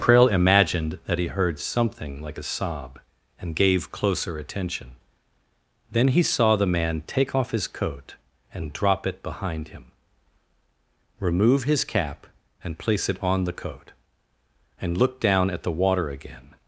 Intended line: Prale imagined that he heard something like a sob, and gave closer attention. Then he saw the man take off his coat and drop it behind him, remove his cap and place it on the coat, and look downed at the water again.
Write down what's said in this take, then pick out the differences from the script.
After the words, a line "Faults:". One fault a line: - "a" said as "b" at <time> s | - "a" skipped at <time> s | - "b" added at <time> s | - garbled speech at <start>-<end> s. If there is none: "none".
Prale imagined that he heard something like a sob, and gave closer attention. Then he saw the man take off his coat and drop it behind him, remove his cap and place it on the coat, and look down at the water again.
Faults:
- "downed" said as "down" at 15.2 s